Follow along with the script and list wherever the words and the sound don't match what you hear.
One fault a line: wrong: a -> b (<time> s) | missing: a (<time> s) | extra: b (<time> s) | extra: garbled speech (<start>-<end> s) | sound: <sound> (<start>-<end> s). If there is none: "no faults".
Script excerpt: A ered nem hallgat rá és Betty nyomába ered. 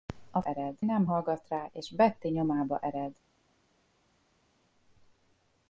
no faults